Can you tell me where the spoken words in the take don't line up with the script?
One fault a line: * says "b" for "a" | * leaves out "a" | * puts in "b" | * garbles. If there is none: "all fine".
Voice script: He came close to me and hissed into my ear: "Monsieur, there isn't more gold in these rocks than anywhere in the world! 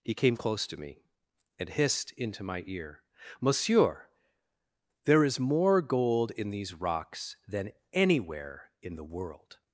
* says "is" for "isn't"